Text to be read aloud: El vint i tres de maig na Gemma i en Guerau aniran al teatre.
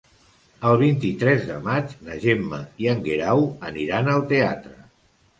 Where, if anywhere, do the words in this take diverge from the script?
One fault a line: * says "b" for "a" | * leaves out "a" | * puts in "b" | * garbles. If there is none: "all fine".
all fine